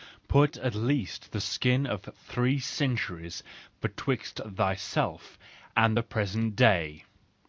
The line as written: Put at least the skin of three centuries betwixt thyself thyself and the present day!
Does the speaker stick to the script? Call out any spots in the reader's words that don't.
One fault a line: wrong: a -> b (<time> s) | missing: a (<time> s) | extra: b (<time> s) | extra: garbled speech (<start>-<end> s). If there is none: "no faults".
missing: thyself (5.4 s)